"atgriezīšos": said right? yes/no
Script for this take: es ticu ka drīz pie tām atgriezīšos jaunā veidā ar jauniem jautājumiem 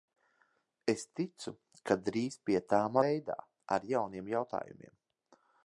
no